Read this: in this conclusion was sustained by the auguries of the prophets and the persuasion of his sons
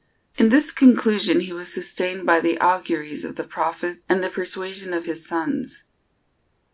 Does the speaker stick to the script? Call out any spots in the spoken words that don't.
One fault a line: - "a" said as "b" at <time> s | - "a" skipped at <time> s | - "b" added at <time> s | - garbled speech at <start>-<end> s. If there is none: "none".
- "he" added at 1.4 s